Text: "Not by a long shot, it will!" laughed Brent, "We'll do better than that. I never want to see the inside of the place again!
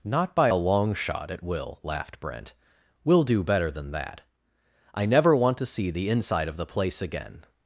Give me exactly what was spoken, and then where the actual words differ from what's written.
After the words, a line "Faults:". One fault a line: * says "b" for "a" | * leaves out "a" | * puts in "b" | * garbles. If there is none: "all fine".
"Not by a long shot, it will!" laughed Brent, "We'll do better than that. I never want to see the inside of the place again!
Faults:
all fine